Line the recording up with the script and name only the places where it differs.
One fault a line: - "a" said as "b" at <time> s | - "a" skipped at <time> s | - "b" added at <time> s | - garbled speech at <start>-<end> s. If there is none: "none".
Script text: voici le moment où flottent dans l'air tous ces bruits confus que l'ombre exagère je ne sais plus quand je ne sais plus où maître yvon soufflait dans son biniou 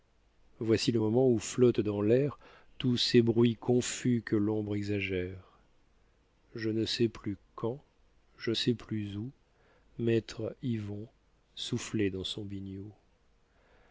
- "ne" skipped at 8.5 s